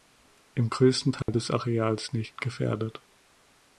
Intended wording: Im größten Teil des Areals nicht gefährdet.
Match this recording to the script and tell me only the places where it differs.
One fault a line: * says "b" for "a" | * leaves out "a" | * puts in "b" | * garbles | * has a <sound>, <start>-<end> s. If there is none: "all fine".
* has a dropout, 1.2-1.3 s